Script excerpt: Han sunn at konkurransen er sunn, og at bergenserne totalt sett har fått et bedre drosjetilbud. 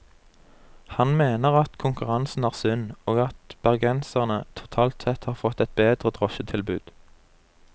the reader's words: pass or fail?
fail